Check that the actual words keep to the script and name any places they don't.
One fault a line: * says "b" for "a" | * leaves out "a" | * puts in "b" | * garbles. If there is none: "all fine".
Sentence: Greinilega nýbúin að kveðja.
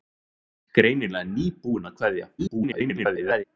* garbles